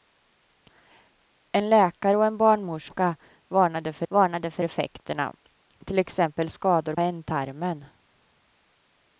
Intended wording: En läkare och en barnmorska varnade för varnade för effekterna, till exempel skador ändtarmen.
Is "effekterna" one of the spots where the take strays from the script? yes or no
no